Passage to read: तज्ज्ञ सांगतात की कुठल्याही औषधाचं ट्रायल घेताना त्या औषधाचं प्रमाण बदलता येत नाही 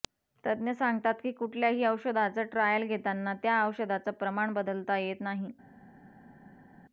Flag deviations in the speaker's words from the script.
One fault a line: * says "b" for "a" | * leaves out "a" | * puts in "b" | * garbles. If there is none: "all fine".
all fine